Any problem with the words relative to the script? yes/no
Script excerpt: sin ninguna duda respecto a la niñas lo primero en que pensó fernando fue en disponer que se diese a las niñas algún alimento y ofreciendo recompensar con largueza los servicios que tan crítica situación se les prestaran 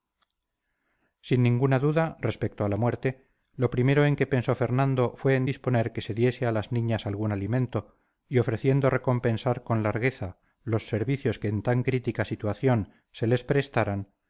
yes